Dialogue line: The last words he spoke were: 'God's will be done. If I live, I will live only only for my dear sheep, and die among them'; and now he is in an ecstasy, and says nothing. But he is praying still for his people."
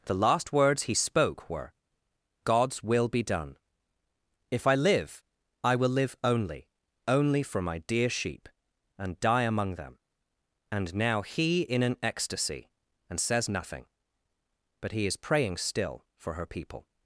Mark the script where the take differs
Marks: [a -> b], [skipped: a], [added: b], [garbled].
The last words he spoke were: 'God's will be done. If I live, I will live only only for my dear sheep, and die among them'; and now he [skipped: is] in an ecstasy, and says nothing. But he is praying still for [his -> her] people."